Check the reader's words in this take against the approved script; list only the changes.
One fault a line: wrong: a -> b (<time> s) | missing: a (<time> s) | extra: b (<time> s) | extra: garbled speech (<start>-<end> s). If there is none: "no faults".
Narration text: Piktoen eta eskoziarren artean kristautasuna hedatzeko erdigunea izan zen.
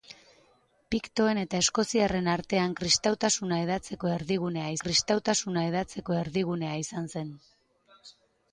extra: kristautasuna hedatzeko erdigunea (4.9 s)